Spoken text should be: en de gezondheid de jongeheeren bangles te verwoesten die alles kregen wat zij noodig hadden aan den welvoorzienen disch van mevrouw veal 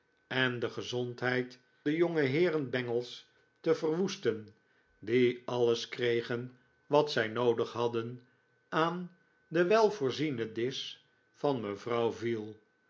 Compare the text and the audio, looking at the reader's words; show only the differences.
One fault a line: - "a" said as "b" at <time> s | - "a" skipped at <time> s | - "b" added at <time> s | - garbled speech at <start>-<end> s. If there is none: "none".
none